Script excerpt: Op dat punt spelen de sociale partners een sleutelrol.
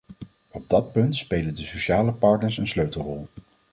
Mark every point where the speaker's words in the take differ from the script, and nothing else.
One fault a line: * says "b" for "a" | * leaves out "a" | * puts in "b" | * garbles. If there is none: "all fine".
all fine